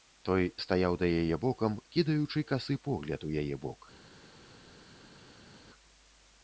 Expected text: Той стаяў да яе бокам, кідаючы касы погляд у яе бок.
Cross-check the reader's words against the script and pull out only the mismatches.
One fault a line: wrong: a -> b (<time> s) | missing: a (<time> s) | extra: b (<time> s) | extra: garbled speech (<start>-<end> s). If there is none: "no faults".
no faults